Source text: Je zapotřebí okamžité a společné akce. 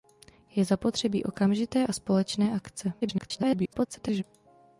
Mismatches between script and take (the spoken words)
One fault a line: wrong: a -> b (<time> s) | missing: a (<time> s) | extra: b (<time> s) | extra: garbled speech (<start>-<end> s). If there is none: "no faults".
extra: garbled speech (3.0-4.2 s)